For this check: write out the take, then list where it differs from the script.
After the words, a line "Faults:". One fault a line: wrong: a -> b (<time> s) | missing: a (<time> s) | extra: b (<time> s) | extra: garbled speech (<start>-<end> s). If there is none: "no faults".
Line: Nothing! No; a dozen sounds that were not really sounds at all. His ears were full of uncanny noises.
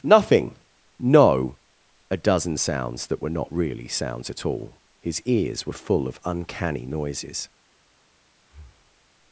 Nothing! No; a dozen sounds that were not really sounds at all. His ears were full of uncanny noises.
Faults:
no faults